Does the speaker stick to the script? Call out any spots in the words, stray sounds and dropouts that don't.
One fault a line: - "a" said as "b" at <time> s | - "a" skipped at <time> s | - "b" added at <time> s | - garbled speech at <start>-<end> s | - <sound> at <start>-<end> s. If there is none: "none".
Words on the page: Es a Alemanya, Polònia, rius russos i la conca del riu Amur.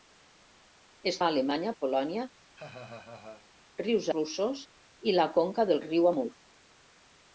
- laugh at 2.5-3.5 s